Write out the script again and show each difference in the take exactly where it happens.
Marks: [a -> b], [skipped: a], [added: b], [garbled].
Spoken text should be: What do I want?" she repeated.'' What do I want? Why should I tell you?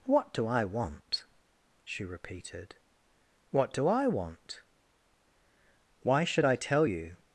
What do I want?" she repeated.'' What do I want? Why should I tell you?